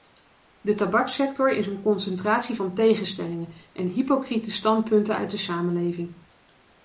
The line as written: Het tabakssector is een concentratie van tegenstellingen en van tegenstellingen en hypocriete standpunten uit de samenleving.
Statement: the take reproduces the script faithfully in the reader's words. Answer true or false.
false